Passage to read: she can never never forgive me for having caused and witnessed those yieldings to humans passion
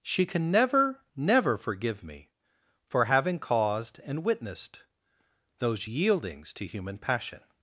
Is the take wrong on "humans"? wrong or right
wrong